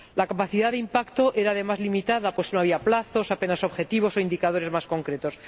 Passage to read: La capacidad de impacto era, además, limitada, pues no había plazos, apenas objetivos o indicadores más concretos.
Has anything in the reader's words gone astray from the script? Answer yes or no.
no